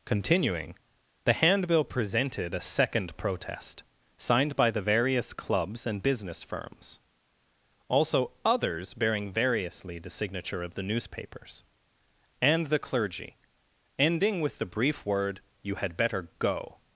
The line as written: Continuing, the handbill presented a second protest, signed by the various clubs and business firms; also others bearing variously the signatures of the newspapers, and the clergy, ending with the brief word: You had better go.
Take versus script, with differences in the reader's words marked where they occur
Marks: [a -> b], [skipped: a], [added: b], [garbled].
Continuing, the handbill presented a second protest, signed by the various clubs and business firms; also others bearing variously the [signatures -> signature] of the newspapers, and the clergy, ending with the brief word: You had better go.